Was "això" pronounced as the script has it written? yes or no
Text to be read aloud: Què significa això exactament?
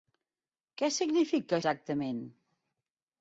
no